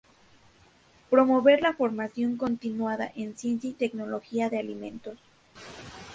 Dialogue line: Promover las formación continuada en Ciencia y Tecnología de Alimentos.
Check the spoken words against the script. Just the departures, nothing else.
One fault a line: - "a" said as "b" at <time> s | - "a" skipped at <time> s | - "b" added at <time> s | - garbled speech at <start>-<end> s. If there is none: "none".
- "las" said as "la" at 1.6 s